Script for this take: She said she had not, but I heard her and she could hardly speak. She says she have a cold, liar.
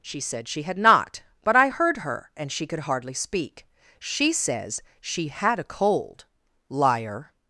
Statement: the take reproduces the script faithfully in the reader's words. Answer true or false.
false